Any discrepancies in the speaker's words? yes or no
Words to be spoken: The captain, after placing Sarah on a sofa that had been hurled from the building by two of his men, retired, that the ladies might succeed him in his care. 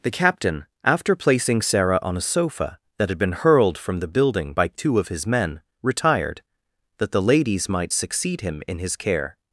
no